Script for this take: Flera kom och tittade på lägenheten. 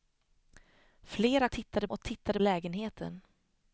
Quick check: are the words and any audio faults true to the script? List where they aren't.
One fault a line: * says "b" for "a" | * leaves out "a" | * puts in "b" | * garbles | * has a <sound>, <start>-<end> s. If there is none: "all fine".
* says "tittade" for "kom"
* leaves out "på"